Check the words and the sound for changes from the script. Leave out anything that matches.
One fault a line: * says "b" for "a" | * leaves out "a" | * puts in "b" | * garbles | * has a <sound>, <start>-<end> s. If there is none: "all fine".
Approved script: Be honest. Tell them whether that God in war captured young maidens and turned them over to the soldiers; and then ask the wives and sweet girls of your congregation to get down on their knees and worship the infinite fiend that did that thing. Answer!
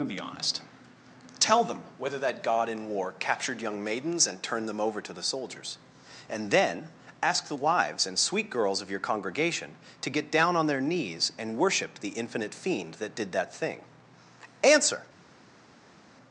all fine